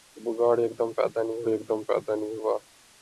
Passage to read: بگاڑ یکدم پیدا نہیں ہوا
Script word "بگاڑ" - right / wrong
right